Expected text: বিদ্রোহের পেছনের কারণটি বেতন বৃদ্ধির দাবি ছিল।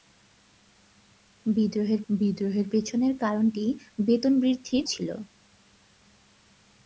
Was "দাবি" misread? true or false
true